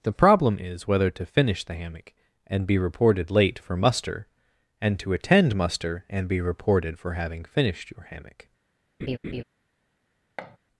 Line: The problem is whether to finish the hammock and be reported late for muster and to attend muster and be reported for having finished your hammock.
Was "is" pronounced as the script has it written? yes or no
yes